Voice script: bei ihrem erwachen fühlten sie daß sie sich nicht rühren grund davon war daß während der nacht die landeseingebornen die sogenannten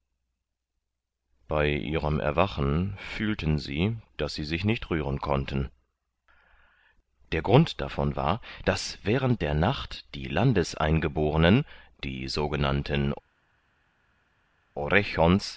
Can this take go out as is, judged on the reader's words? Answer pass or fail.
fail